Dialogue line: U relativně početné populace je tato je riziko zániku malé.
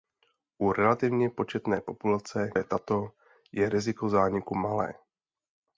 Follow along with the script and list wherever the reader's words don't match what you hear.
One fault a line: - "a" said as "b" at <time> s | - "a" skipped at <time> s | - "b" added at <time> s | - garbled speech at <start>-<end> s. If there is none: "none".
none